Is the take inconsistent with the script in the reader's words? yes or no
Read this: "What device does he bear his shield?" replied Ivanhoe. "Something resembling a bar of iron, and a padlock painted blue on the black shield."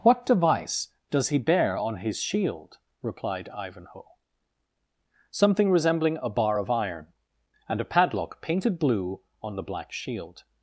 yes